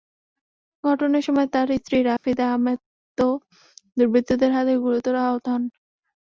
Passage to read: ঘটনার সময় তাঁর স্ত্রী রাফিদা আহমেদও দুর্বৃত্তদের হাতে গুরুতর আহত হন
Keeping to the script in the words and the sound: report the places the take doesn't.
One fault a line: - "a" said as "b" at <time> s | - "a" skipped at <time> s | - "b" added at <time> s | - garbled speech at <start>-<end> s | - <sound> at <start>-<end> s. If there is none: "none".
- dropout at 2.2-2.2 s